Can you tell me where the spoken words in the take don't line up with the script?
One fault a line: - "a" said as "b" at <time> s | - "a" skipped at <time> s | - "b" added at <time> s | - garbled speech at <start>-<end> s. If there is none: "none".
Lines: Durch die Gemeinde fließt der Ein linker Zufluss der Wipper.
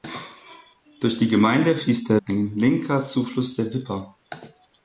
none